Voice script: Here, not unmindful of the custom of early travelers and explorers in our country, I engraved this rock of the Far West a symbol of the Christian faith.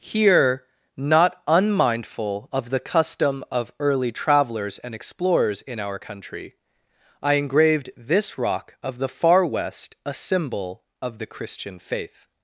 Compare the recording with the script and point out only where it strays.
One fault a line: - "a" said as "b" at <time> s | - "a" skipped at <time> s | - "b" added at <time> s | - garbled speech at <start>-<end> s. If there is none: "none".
none